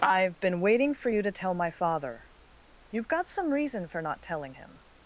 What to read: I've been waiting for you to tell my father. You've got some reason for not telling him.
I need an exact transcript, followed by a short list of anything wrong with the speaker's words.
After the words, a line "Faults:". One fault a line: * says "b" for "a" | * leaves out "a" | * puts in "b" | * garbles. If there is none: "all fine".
I've been waiting for you to tell my father. You've got some reason for not telling him.
Faults:
all fine